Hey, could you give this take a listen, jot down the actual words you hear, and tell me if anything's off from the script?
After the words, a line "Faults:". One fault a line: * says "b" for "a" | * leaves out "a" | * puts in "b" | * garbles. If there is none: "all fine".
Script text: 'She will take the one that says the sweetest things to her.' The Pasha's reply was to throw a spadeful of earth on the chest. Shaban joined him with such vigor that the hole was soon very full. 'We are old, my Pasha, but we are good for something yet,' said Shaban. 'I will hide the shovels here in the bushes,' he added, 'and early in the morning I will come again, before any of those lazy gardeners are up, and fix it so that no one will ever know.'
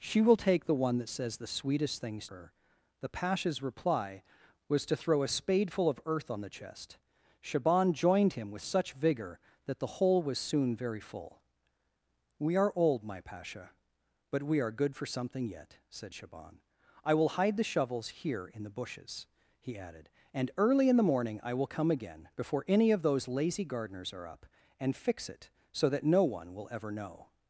'She will take the one that says the sweetest things her.' The Pasha's reply was to throw a spadeful of earth on the chest. Shaban joined him with such vigor that the hole was soon very full. 'We are old, my Pasha, but we are good for something yet,' said Shaban. 'I will hide the shovels here in the bushes,' he added, 'and early in the morning I will come again, before any of those lazy gardeners are up, and fix it so that no one will ever know.'
Faults:
* leaves out "to"